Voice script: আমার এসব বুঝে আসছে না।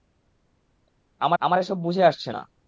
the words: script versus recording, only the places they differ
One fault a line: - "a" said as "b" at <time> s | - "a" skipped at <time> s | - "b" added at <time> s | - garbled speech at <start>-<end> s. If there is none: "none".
- "আমার" added at 1.4 s